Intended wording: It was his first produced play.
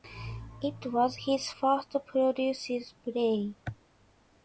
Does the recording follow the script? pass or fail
pass